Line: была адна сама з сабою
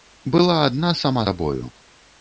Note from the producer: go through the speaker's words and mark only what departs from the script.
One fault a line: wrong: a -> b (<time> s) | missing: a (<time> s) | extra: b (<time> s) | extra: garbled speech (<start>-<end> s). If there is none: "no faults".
missing: з (1.3 s)